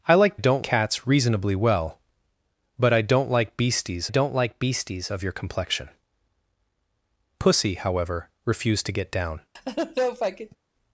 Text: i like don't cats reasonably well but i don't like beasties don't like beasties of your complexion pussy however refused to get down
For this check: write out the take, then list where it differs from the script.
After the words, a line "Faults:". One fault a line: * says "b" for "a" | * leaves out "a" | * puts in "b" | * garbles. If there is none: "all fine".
i like don't cats reasonably well but i don't like beasties don't like beasties of your complexion pussy however refused to get down
Faults:
all fine